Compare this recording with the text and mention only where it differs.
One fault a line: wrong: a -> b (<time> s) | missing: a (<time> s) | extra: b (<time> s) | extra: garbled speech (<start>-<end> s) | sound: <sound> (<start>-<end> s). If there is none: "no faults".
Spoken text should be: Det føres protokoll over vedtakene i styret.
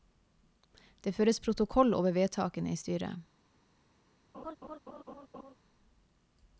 sound: laugh (4.3-5.6 s)